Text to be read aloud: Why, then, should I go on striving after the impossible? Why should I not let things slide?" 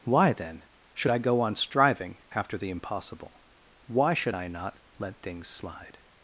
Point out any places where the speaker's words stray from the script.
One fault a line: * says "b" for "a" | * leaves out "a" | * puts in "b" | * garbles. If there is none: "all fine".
all fine